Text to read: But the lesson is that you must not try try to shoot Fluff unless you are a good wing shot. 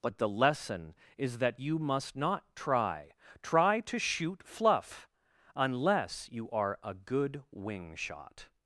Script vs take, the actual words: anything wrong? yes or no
no